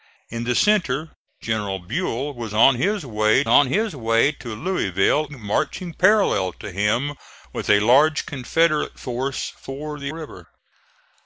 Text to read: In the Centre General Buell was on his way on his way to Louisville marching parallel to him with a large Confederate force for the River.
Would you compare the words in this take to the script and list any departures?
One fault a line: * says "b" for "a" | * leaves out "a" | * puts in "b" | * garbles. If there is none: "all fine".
all fine